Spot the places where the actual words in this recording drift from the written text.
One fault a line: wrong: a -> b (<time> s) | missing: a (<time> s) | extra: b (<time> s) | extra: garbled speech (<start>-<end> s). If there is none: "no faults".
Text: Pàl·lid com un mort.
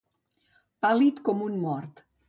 no faults